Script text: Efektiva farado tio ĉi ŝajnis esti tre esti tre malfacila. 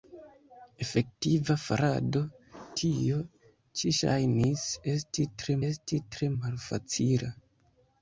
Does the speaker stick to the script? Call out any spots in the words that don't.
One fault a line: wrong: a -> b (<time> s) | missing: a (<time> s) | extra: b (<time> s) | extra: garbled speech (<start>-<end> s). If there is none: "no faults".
no faults